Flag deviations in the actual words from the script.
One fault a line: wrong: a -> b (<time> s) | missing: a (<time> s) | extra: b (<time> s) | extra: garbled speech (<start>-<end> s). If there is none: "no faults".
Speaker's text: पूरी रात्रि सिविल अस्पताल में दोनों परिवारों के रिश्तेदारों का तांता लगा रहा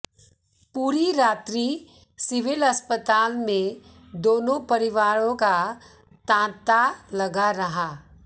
missing: के रिश्तेदारों (5.3 s)